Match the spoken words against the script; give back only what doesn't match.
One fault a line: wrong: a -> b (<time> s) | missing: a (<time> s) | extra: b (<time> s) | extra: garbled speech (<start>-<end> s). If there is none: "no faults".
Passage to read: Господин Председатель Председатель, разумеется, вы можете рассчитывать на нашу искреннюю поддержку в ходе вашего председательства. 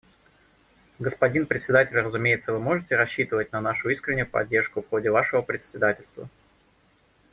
missing: Председатель (2.0 s)